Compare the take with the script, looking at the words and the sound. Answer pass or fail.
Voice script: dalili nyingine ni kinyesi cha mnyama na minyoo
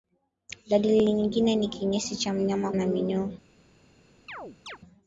fail